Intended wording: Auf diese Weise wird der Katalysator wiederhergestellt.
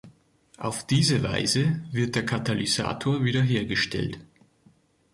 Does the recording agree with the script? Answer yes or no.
yes